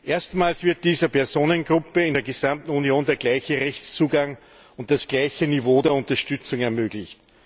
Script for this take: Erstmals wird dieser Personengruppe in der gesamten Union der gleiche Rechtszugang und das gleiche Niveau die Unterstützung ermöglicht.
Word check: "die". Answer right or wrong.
wrong